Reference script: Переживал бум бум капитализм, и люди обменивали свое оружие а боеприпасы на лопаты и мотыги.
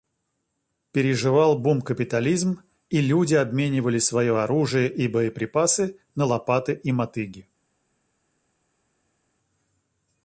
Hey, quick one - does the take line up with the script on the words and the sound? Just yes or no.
no